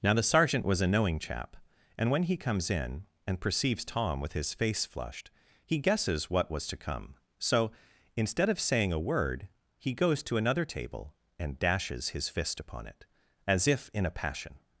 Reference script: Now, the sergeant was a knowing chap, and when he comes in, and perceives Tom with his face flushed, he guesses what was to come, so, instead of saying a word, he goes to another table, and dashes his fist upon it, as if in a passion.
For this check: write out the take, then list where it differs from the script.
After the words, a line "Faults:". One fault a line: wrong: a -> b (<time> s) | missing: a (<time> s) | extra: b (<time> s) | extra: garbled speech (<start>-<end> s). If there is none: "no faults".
Now, the sergeant was a knowing chap, and when he comes in, and perceives Tom with his face flushed, he guesses what was to come, so, instead of saying a word, he goes to another table, and dashes his fist upon it, as if in a passion.
Faults:
no faults